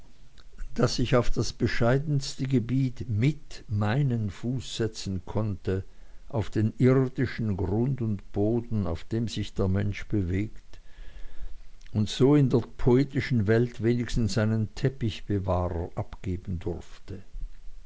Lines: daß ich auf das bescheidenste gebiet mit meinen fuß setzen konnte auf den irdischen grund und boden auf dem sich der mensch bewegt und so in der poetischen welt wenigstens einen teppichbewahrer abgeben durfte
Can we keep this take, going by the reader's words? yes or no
yes